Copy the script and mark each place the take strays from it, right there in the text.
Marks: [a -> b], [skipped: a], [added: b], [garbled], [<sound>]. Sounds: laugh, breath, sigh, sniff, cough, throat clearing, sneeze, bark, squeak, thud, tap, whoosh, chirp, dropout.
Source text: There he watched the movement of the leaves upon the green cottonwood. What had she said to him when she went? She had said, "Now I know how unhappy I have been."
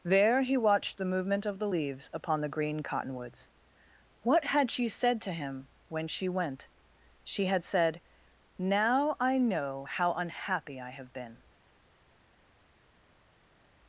There he watched the movement of the leaves upon the green [cottonwood. -> cottonwoods] What had she said to him when she went? She had said, "Now I know how unhappy I have been."